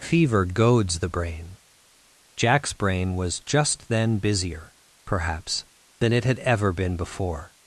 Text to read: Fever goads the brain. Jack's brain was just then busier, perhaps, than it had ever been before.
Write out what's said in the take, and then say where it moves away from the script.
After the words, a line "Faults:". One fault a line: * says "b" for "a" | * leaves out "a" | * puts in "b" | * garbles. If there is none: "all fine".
Fever goads the brain. Jack's brain was just then busier, perhaps, than it had ever been before.
Faults:
all fine